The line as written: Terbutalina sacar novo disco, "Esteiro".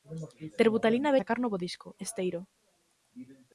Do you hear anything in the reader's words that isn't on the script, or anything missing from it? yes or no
no